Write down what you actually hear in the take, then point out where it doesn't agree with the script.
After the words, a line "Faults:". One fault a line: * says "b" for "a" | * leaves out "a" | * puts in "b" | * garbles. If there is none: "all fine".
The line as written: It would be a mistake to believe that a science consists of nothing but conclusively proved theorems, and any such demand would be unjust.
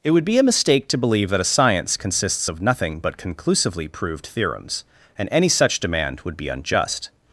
It would be a mistake to believe that a science consists of nothing but conclusively proved theorems, and any such demand would be unjust.
Faults:
all fine